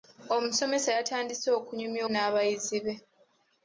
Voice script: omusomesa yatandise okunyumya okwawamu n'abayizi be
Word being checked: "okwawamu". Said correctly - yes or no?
no